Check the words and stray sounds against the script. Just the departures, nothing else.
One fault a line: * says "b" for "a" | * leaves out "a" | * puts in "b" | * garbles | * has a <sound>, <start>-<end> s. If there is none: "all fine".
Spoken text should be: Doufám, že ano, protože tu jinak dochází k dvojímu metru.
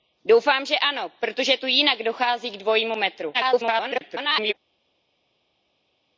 * garbles